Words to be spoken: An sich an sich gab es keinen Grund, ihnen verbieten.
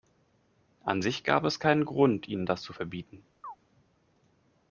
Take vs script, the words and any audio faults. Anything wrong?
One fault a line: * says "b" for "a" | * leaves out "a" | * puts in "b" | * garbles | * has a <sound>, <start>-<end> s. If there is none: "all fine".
* leaves out "an sich"
* puts in "das zu"
* has a chirp, 3.4-3.6 s